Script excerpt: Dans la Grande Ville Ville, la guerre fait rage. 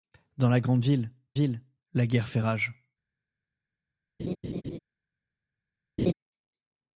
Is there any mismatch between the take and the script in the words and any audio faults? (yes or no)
yes